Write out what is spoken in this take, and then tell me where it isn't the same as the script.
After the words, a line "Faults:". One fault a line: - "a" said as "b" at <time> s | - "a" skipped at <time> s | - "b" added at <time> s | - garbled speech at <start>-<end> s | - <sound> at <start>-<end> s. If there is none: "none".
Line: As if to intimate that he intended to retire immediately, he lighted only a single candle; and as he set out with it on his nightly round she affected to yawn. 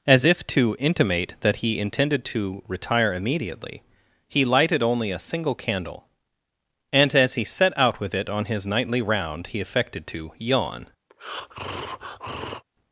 As if to intimate that he intended to retire immediately, he lighted only a single candle; and as he set out with it on his nightly round he affected to yawn.
Faults:
- "she" said as "he" at 9.5 s
- breath at 11.1-12.6 s